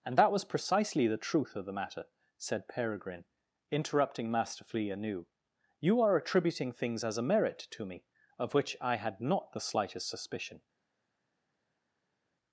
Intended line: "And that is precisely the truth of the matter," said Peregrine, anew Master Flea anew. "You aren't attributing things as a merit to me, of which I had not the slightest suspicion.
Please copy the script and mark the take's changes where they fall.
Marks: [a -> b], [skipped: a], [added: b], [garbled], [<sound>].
"And that [is -> was] precisely the truth of the matter," said Peregrine, [anew -> interrupting] Master Flea anew. "You [aren't -> are] attributing things as a merit to me, of which I had not the slightest suspicion.